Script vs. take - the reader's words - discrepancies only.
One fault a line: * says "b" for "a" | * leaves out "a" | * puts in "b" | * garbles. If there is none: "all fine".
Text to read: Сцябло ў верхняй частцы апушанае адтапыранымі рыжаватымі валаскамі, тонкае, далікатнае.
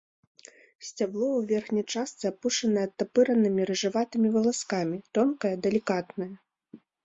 all fine